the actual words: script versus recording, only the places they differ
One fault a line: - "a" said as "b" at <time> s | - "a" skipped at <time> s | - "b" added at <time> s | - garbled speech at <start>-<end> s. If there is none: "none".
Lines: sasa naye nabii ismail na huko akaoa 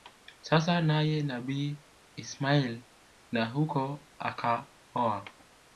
none